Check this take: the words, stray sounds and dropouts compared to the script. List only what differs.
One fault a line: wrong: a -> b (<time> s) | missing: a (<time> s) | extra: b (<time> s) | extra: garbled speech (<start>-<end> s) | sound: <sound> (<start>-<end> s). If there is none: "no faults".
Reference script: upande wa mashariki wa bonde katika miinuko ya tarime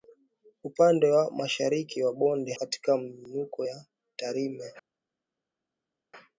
no faults